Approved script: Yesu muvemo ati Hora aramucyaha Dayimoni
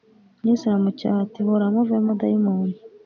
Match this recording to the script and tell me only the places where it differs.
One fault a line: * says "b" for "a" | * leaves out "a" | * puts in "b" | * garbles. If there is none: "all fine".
* says "aramucyaha" for "muvemo"
* says "muvemo" for "aramucyaha"